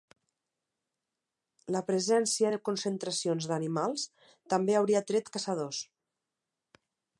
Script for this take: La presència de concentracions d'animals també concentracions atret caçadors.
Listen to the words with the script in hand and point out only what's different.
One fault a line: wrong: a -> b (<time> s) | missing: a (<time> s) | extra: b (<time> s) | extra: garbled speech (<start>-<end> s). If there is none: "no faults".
wrong: concentracions -> hauria (4.8 s)